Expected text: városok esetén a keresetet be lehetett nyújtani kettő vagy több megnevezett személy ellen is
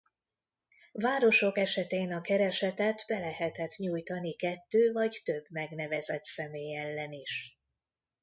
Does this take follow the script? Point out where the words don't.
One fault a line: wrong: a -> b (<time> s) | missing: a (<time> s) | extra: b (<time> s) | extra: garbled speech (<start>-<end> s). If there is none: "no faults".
no faults